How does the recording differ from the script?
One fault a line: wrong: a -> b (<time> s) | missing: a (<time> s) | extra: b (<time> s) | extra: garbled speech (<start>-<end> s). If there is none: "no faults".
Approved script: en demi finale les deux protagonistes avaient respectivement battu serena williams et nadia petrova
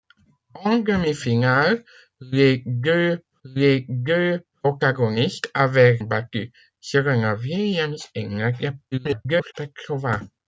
extra: les deux (3.4 s)
missing: respectivement (6.0 s)
extra: garbled speech (8.9-9.5 s)